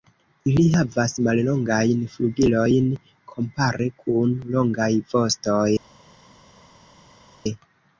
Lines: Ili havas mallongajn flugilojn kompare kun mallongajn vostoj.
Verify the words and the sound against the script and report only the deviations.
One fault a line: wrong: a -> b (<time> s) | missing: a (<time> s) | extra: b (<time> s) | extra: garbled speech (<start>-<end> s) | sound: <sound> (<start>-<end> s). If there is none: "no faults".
wrong: mallongajn -> longaj (4.6 s)